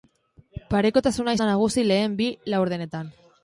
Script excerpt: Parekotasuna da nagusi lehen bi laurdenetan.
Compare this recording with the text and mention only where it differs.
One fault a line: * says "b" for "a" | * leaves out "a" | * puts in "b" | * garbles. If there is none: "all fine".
all fine